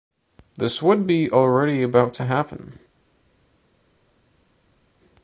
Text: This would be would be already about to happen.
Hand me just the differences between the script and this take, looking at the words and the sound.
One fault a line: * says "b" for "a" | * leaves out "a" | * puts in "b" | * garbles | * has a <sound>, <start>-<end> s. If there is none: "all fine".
* leaves out "would be"